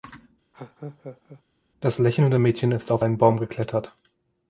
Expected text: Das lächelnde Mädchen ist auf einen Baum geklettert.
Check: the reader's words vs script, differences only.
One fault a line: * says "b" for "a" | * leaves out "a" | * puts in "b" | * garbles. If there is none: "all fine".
all fine